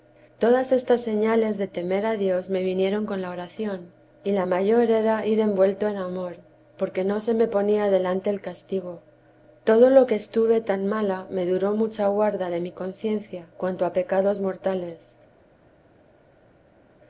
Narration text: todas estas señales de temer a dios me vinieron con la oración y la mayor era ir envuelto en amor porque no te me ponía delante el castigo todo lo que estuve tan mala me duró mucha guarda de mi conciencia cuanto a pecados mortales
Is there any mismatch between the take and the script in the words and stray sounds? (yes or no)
yes